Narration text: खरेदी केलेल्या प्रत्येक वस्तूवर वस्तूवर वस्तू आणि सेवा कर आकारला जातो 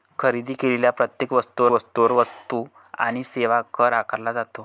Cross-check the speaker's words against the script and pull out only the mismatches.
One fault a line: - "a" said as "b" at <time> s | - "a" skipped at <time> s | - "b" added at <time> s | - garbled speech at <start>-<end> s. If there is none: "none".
none